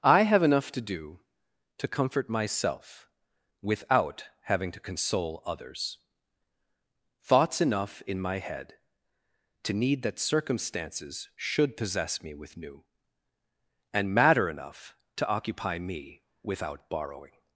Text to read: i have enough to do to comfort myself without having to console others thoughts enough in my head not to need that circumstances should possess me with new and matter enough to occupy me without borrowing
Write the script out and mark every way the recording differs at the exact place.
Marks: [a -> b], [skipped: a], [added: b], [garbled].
i have enough to do to comfort myself without having to console others thoughts enough in my head [skipped: not] to need that circumstances should possess me with new and matter enough to occupy me without borrowing